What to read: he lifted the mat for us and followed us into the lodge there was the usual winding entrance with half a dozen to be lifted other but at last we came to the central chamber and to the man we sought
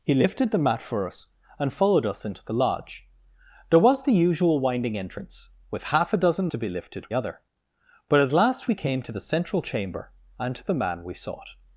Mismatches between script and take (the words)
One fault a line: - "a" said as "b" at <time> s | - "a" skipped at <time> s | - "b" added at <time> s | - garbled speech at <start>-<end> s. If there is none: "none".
none